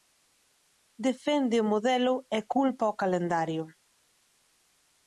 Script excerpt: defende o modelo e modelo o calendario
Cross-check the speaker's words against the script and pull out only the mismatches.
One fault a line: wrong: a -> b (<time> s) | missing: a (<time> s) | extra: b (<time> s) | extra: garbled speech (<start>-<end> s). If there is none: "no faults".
wrong: modelo -> culpa (2.5 s)